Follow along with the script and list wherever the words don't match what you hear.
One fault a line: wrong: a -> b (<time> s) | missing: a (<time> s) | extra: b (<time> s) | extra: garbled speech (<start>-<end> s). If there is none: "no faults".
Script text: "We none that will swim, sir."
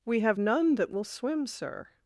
extra: have (0.2 s)